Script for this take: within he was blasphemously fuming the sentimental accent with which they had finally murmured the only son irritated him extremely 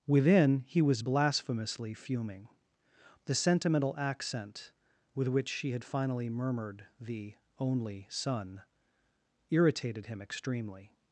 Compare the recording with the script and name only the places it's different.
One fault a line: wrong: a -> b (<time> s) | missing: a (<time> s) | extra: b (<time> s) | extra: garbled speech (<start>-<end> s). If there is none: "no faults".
wrong: they -> she (5.5 s)